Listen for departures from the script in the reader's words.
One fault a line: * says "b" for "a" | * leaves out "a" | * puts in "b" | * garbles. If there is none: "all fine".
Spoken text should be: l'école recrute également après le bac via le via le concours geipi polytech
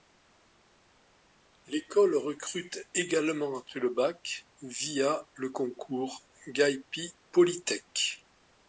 * leaves out "via le"